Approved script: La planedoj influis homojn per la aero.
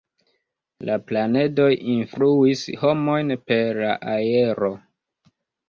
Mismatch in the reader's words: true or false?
false